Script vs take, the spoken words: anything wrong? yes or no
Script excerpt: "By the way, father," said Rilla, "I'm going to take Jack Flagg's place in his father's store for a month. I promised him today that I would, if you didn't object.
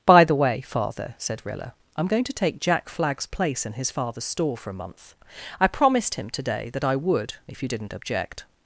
no